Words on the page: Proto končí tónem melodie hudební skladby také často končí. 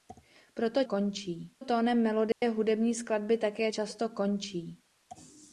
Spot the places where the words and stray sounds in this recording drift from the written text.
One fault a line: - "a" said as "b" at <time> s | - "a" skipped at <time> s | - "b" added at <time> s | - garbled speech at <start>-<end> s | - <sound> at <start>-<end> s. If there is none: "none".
- dropout at 2.3-2.4 s